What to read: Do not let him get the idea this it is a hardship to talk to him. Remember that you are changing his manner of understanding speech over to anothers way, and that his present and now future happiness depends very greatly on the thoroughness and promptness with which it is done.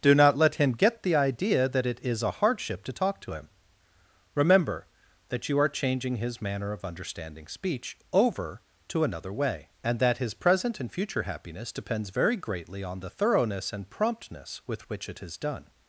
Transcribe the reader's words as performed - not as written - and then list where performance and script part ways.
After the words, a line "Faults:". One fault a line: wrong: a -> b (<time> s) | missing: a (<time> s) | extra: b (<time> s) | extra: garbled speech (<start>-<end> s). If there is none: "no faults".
Do not let him get the idea that it is a hardship to talk to him. Remember that you are changing his manner of understanding speech over to another way, and that his present and future happiness depends very greatly on the thoroughness and promptness with which it is done.
Faults:
wrong: this -> that (1.7 s)
wrong: anothers -> another (9.0 s)
missing: now (10.9 s)